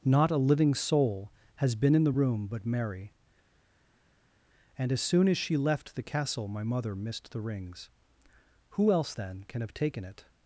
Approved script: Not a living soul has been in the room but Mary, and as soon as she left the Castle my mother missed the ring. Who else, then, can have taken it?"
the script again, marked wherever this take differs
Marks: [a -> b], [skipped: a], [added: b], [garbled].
Not a living soul has been in the room but Mary, and as soon as she left the Castle my mother missed the [ring. -> rings] Who else, then, can have taken it?"